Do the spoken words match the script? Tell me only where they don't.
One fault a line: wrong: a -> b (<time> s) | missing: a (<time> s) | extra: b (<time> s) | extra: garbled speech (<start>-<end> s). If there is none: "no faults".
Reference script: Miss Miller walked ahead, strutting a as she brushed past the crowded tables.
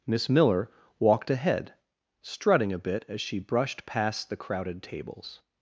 extra: bit (2.8 s)